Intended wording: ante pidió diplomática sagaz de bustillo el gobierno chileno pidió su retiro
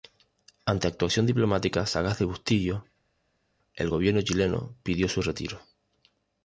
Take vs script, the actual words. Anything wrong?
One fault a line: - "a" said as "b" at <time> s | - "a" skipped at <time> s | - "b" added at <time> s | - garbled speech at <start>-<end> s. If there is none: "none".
- "pidió" said as "actuación" at 0.9 s